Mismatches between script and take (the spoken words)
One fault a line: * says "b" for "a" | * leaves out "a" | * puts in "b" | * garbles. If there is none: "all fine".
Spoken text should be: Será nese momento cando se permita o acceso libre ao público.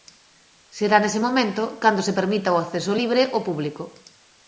all fine